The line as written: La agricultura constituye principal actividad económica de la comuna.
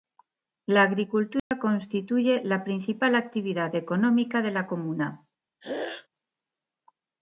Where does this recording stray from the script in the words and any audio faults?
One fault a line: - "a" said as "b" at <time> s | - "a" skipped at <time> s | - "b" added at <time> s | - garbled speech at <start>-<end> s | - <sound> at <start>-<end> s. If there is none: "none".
- dropout at 1.4-1.5 s
- "la" added at 2.4 s
- throat clearing at 5.6-6.1 s